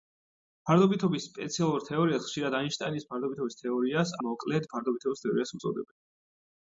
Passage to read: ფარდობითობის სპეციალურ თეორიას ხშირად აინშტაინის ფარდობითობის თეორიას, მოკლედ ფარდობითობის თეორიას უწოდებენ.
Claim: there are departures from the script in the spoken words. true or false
false